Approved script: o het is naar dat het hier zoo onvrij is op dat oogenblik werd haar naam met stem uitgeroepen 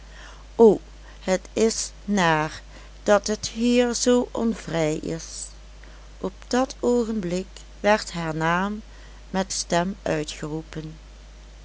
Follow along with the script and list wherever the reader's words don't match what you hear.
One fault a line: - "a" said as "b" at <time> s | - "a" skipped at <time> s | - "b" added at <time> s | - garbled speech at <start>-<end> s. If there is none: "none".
none